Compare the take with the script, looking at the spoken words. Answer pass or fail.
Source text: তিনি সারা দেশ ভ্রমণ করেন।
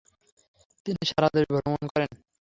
pass